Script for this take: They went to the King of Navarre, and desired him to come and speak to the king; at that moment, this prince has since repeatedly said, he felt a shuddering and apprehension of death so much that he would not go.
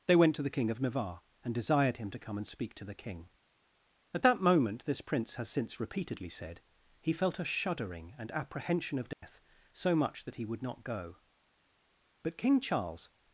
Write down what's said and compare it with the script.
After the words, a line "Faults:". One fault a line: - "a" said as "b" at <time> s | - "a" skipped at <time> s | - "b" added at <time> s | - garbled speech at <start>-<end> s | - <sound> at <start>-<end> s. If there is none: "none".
They went to the King of Navarre, and desired him to come and speak to the king; at that moment, this prince has since repeatedly said, he felt a shuddering and apprehension of death so much that he would not go. But King Charles
Faults:
- dropout at 9.1-9.2 s
- "But King Charles" added at 12.2 s